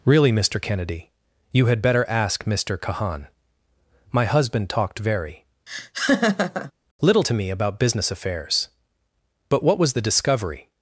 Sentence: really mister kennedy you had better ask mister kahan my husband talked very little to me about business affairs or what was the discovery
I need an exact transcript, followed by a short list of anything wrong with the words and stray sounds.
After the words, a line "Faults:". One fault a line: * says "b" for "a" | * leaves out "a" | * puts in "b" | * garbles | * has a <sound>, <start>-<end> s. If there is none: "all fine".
really mister kennedy you had better ask mister kahan my husband talked very little to me about business affairs but what was the discovery
Faults:
* has a laugh, 5.7-6.7 s
* says "but" for "or"